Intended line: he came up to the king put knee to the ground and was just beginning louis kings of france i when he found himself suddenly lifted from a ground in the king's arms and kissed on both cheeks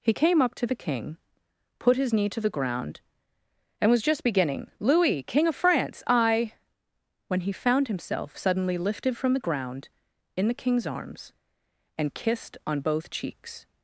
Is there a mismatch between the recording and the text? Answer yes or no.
yes